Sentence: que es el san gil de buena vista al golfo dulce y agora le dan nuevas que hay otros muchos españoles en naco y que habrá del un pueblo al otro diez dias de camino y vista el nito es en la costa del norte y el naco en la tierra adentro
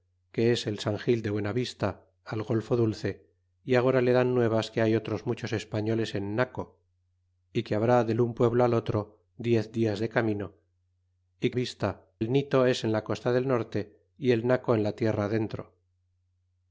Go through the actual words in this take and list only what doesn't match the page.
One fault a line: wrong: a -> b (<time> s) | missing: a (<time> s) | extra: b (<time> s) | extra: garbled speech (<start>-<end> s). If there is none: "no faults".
no faults